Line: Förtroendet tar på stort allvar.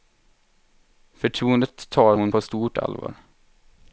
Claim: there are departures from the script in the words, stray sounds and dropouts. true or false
true